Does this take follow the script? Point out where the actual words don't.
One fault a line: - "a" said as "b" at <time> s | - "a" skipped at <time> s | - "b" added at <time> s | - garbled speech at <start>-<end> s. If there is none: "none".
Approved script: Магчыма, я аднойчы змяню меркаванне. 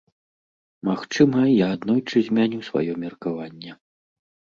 - "сваё" added at 2.7 s